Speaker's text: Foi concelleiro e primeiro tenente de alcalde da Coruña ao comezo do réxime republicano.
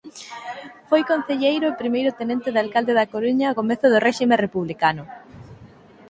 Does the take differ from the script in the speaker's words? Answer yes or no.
no